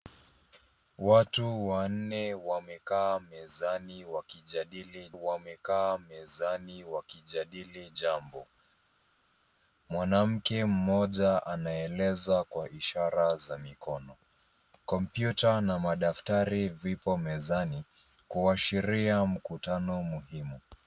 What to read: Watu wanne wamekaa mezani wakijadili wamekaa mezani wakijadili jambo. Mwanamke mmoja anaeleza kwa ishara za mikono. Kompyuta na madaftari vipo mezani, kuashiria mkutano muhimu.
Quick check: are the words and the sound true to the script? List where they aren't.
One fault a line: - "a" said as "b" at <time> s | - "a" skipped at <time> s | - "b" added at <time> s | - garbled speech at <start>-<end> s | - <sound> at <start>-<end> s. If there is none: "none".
none